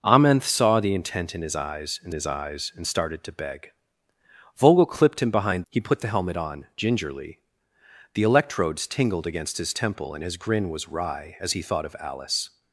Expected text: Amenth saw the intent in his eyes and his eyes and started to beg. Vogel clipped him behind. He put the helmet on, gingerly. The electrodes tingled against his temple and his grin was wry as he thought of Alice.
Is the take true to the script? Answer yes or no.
yes